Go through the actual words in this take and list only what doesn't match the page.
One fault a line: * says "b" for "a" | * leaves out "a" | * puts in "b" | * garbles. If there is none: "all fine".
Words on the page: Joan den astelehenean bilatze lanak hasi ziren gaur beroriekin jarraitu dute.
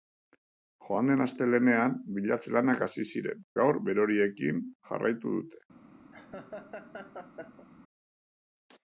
all fine